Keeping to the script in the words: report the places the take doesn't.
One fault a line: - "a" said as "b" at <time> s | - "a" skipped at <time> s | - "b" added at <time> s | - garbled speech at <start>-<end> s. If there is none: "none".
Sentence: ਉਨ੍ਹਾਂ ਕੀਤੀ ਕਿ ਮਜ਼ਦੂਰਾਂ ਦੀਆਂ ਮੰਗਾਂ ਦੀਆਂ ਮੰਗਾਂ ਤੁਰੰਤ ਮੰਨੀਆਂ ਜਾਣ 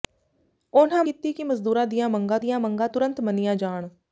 none